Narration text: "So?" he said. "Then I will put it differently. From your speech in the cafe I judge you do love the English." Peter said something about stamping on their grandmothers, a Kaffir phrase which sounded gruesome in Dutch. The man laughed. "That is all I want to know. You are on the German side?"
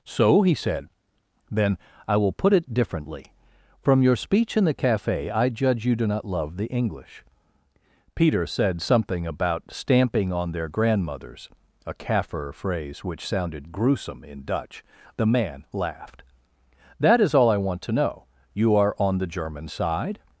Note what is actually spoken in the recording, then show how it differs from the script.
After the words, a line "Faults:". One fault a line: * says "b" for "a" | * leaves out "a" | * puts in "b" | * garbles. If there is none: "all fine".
"So?" he said. "Then I will put it differently. From your speech in the cafe I judge you do not love the English." Peter said something about stamping on their grandmothers, a Kaffir phrase which sounded gruesome in Dutch. The man laughed. "That is all I want to know. You are on the German side?"
Faults:
* puts in "not"